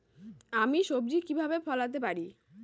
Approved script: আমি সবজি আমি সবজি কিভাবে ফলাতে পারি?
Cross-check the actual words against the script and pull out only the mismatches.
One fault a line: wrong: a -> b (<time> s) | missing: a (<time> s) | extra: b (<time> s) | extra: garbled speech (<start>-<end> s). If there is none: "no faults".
missing: আমি সবজি (1.2 s)